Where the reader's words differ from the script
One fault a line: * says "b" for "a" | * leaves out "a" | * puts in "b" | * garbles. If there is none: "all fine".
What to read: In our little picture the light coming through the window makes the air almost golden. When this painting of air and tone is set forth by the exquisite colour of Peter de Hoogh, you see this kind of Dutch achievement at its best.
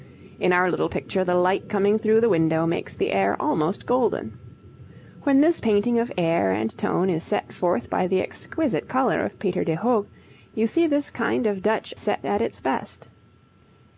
* says "set" for "achievement"